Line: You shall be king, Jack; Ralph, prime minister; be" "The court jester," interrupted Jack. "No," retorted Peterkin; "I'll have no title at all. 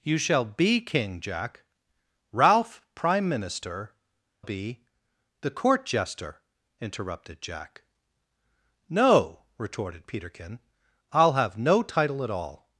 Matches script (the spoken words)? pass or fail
pass